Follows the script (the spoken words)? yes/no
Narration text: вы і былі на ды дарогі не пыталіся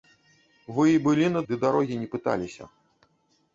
yes